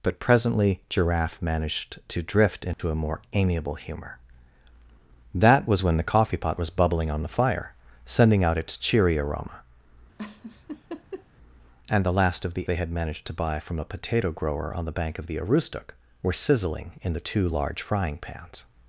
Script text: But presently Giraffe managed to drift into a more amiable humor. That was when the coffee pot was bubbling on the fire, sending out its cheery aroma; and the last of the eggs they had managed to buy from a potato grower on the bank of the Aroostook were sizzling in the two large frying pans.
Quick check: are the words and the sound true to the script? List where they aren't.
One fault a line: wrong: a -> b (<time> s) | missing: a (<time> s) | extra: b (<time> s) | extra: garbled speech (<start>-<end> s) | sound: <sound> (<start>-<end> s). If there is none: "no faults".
sound: dropout (2.7-2.8 s)
sound: laugh (10.2-11.3 s)
missing: eggs (12.7 s)